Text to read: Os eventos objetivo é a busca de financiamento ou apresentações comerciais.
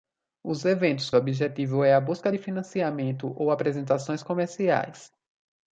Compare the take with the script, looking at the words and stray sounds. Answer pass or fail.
pass